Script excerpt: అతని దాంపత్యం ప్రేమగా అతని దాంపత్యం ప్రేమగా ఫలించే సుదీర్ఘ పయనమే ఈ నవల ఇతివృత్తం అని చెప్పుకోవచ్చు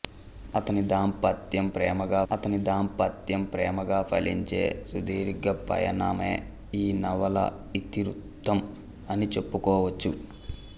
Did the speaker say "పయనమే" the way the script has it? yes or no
yes